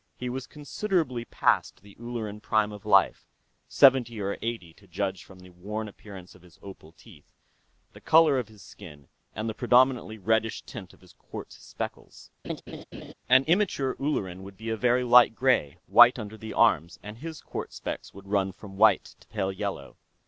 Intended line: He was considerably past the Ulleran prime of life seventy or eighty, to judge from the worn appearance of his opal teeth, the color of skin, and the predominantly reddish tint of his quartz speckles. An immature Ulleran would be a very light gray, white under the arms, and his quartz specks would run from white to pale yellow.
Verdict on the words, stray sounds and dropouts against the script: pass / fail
fail